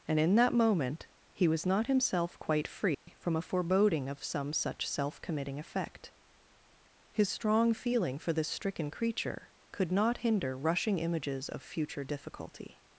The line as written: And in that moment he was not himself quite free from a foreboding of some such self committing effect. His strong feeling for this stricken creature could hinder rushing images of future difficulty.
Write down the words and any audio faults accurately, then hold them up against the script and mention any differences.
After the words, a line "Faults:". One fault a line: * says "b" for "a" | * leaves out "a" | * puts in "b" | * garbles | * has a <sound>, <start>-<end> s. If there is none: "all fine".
And in that moment he was not himself quite free from a foreboding of some such self committing effect. His strong feeling for this stricken creature could not hinder rushing images of future difficulty.
Faults:
* has a dropout, 2.9-3.1 s
* puts in "not"